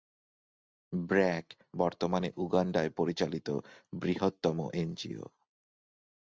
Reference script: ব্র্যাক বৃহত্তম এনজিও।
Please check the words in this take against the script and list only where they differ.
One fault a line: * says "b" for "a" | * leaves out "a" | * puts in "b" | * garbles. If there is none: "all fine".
* puts in "বর্তমানে উগান্ডায় পরিচালিত"